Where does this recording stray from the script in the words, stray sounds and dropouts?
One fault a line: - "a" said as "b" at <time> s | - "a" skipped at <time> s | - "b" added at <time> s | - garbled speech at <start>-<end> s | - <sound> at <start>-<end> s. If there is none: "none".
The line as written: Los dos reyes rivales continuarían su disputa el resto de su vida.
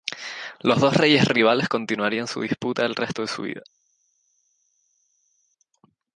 none